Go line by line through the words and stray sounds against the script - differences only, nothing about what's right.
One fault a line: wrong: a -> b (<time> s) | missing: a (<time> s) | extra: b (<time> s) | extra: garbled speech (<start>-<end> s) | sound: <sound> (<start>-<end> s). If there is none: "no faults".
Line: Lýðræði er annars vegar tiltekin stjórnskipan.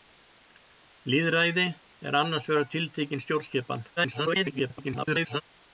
extra: garbled speech (4.0-5.4 s)